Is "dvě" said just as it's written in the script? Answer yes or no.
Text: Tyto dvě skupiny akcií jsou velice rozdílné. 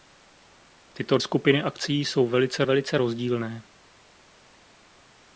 no